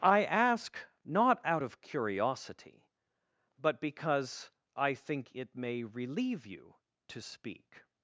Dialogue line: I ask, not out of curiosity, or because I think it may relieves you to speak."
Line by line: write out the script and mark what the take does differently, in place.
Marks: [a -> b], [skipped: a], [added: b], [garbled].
I ask, not out of curiosity, [or -> but] because I think it may [relieves -> relieve] you to speak."